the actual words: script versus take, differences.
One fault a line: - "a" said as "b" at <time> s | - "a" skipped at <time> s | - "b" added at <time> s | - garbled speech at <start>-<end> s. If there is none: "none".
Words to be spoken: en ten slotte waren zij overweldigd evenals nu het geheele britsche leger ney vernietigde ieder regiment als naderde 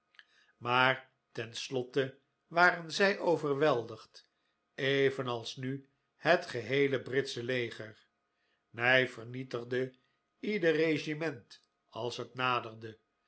- "en" said as "maar" at 0.6 s
- "het" added at 12.2 s